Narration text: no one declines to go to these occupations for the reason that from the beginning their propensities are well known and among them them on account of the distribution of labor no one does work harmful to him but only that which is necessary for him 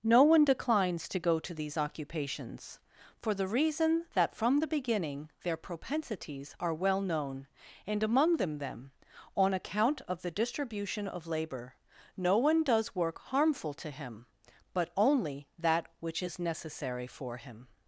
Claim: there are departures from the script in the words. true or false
false